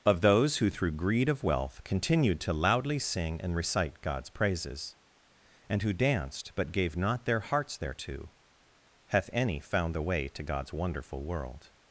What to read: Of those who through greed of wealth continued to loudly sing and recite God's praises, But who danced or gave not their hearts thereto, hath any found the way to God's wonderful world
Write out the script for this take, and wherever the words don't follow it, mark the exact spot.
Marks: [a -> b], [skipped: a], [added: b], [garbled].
Of those who through greed of wealth continued to loudly sing and recite God's praises, [But -> And] who danced [or -> but] gave not their hearts thereto, hath any found the way to God's wonderful world